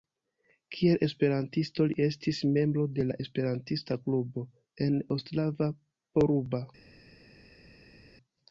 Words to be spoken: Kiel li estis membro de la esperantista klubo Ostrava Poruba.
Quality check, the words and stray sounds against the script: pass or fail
fail